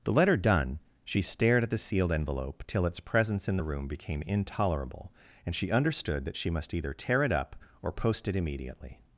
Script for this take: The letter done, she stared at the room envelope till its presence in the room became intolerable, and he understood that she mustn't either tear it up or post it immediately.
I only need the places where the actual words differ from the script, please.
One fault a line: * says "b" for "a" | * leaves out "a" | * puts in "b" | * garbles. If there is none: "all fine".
* says "sealed" for "room"
* says "she" for "he"
* says "must" for "mustn't"